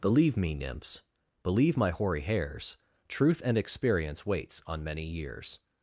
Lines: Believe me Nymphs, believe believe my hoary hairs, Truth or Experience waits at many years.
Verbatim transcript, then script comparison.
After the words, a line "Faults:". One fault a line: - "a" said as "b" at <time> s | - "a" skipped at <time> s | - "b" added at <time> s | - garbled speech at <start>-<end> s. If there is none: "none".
Believe me Nymphs, believe my hoary hairs, Truth and Experience waits on many years.
Faults:
- "believe" skipped at 1.8 s
- "or" said as "and" at 3.4 s
- "at" said as "on" at 4.6 s